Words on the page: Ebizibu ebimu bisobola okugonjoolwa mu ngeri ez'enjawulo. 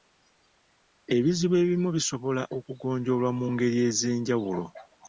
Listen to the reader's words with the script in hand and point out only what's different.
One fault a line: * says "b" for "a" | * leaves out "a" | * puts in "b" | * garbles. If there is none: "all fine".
all fine